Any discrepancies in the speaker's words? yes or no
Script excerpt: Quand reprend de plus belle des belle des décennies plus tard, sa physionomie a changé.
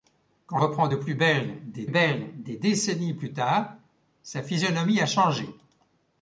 no